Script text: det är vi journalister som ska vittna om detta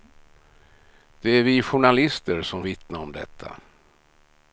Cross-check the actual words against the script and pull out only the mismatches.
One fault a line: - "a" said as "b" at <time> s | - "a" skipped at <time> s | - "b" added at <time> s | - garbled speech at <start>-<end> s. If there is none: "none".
- "ska" skipped at 2.6 s